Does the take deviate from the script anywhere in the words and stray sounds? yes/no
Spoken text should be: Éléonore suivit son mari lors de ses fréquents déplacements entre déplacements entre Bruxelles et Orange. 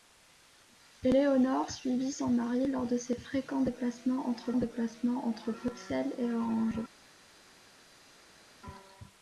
no